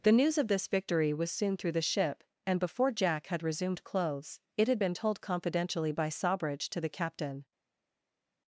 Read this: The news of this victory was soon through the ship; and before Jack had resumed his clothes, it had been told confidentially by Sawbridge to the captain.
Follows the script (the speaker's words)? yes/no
no